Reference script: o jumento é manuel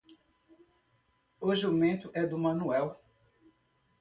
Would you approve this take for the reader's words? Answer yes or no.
no